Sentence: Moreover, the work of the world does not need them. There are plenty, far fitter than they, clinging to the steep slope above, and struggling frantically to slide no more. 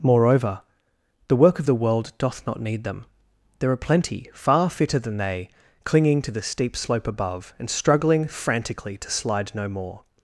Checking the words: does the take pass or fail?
fail